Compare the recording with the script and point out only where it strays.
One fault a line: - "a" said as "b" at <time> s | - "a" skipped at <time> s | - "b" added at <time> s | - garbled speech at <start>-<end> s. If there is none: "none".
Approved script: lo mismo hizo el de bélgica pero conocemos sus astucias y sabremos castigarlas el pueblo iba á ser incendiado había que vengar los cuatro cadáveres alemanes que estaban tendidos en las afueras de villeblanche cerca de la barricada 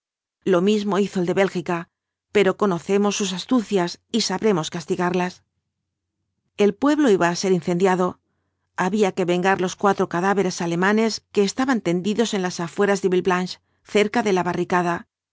none